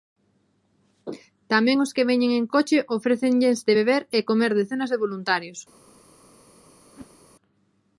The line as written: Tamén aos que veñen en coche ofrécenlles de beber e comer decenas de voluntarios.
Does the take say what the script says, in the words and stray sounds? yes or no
no